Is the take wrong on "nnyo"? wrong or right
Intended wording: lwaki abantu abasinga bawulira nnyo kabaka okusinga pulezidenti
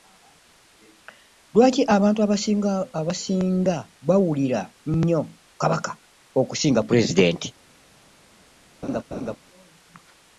right